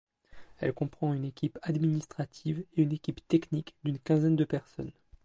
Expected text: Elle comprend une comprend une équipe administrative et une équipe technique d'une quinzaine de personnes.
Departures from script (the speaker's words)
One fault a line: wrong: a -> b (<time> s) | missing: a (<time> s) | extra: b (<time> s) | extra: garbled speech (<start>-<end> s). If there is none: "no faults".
missing: comprend une (1.2 s)